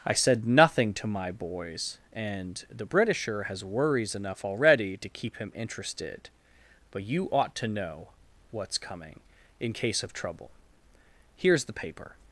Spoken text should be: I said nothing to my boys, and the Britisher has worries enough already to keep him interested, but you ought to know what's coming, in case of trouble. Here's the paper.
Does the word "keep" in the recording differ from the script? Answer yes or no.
no